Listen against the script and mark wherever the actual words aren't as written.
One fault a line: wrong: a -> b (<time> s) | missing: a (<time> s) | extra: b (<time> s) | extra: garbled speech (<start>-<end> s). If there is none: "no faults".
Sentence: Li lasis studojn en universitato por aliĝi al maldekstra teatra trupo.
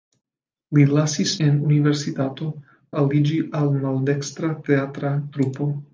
missing: studojn (1.3 s)
missing: por (2.5 s)